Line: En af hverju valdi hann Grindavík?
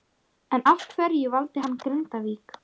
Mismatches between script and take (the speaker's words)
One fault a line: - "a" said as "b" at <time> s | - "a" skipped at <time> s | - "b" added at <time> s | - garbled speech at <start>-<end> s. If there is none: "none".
none